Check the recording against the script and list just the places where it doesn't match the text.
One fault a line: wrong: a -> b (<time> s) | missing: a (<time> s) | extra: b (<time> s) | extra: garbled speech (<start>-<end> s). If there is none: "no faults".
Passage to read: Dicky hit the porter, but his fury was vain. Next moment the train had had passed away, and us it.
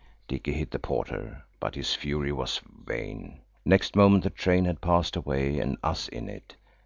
missing: had (4.8 s)
extra: in (6.1 s)